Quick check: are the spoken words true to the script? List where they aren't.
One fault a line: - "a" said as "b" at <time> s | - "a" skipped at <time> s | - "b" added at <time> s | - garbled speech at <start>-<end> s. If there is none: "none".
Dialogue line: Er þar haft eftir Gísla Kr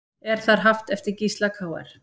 none